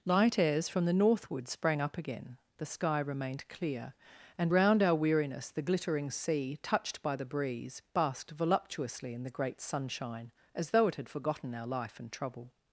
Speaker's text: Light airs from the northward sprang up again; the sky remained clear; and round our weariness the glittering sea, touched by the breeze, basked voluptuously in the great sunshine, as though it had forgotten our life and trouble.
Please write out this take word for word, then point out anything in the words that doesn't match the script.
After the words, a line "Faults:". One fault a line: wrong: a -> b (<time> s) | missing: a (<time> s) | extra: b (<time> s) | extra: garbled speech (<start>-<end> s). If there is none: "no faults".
Light airs from the northward sprang up again; the sky remained clear; and round our weariness the glittering sea, touched by the breeze, basked voluptuously in the great sunshine, as though it had forgotten our life and trouble.
Faults:
no faults